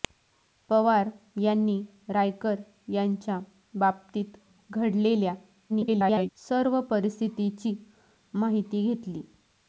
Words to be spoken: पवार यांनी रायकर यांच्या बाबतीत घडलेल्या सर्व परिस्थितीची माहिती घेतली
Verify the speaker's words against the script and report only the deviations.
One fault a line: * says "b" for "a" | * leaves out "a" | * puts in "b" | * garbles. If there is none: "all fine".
* garbles